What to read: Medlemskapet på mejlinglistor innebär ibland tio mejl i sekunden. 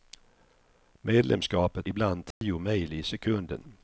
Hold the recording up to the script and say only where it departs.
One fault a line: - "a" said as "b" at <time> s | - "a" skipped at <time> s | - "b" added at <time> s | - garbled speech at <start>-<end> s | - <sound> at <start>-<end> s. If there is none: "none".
- "på mejlinglistor innebär" skipped at 1.9 s
- dropout at 2.3-2.4 s